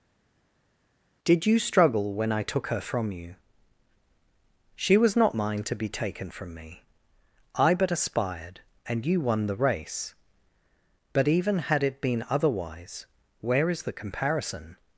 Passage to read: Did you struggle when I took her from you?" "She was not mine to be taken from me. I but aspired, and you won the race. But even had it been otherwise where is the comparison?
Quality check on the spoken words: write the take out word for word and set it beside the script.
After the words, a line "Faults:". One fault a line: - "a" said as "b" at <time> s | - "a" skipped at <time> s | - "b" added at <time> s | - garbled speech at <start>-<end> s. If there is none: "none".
Did you struggle when I took her from you?" "She was not mine to be taken from me. I but aspired, and you won the race. But even had it been otherwise where is the comparison?
Faults:
none